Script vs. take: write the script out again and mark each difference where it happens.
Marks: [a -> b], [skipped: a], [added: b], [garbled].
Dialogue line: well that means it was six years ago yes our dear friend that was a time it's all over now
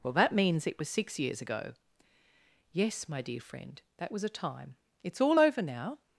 well that means it was six years ago yes [our -> my] dear friend that was a time it's all over now